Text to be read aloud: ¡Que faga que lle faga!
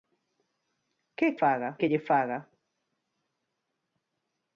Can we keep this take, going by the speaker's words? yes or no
yes